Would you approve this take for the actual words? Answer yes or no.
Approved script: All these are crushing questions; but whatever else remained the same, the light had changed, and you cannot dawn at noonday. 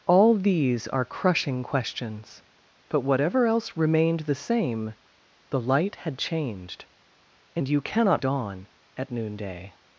yes